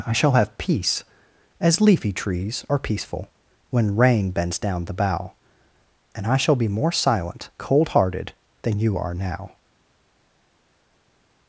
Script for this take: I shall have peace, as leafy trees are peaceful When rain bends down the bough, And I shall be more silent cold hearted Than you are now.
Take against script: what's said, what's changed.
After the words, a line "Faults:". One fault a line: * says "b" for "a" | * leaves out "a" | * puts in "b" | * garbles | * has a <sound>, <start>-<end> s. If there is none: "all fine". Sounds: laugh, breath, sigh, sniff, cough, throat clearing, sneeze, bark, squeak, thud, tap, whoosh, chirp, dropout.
I shall have peace, as leafy trees are peaceful When rain bends down the bough, And I shall be more silent cold hearted Than you are now.
Faults:
all fine